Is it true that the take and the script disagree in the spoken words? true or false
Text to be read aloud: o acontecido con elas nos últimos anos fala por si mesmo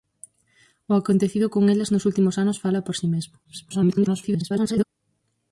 true